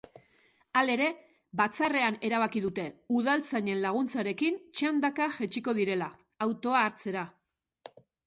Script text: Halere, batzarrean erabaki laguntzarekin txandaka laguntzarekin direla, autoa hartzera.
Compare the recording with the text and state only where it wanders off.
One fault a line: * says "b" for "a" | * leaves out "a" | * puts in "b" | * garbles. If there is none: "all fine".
* puts in "dute udaltzainen"
* says "jaitsiko" for "laguntzarekin"